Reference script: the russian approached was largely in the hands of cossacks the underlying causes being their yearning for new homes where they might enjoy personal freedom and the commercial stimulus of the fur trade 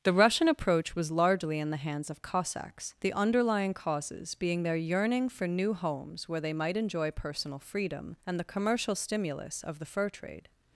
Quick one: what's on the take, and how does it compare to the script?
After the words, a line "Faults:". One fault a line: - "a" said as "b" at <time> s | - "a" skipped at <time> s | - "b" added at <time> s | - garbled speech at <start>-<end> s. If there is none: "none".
the russian approach was largely in the hands of cossacks the underlying causes being their yearning for new homes where they might enjoy personal freedom and the commercial stimulus of the fur trade
Faults:
- "approached" said as "approach" at 0.5 s